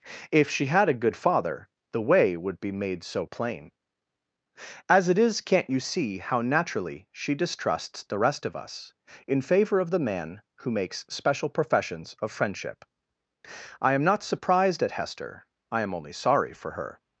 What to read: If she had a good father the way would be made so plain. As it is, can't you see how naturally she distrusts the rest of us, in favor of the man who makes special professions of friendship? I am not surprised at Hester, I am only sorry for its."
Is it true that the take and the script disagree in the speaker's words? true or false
true